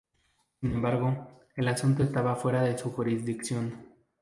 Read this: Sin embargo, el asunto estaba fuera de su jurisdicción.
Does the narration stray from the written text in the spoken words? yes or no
no